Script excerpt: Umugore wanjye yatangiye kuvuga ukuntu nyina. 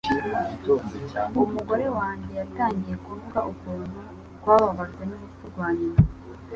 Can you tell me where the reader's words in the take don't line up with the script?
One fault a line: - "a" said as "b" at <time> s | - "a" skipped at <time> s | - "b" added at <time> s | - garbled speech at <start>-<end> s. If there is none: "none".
- "twababajwe n'urupfu rwa" added at 4.4 s